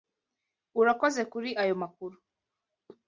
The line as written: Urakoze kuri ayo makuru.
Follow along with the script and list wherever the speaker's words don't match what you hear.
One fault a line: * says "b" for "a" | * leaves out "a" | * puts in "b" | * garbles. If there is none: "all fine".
all fine